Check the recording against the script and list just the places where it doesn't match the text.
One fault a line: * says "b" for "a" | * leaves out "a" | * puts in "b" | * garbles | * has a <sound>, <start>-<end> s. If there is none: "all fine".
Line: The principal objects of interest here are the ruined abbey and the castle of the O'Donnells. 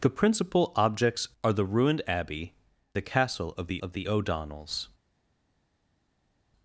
* leaves out "of interest here"
* leaves out "and"
* puts in "of the"